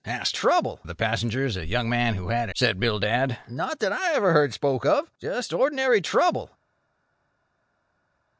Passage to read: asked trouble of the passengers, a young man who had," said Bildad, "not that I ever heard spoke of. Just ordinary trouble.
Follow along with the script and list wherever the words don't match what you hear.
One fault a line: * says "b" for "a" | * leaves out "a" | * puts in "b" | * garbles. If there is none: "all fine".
all fine